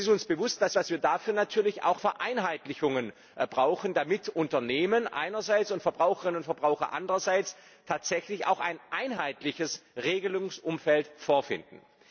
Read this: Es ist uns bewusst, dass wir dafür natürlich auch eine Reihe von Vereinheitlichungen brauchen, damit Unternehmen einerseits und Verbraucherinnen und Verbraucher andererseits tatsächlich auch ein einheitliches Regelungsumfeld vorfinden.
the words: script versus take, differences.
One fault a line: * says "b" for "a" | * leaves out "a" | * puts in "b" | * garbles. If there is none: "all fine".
* puts in "dass"
* leaves out "eine Reihe von"